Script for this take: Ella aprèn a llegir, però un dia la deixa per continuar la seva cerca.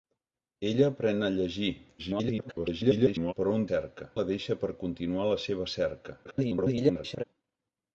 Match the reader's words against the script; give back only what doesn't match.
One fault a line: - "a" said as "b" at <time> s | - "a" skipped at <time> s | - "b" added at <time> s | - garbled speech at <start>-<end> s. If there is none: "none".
- garbled speech at 2.0-3.3 s
- "dia" said as "cerca" at 3.7 s
- garbled speech at 6.2-7.2 s